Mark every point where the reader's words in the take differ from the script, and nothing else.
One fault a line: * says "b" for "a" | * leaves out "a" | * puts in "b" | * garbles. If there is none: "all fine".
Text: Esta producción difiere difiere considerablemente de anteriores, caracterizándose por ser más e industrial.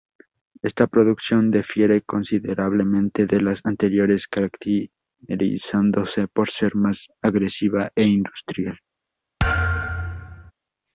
* leaves out "difiere"
* puts in "las"
* puts in "agresiva"